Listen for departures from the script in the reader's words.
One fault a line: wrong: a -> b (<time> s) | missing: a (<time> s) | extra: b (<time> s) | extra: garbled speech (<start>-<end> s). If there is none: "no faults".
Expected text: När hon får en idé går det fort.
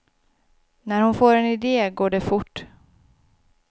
no faults